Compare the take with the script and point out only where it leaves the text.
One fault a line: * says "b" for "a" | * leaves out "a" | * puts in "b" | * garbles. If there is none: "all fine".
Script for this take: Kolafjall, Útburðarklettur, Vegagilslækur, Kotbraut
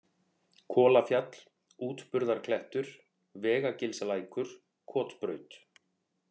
all fine